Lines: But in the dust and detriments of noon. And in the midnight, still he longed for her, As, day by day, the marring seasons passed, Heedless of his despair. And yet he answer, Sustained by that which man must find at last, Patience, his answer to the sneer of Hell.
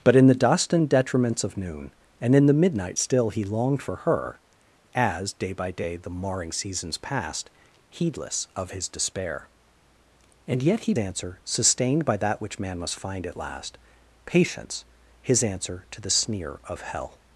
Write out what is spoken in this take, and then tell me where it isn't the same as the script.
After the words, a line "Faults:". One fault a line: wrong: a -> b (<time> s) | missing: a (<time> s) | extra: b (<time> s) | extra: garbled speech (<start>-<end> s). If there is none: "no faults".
But in the dust and detriments of noon. And in the midnight, still he longed for her, As, day by day, the marring seasons passed, Heedless of his despair. And yet he answer, Sustained by that which man must find at last, Patience, his answer to the sneer of Hell.
Faults:
no faults